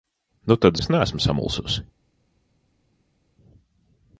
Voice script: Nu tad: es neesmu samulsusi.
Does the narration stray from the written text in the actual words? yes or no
no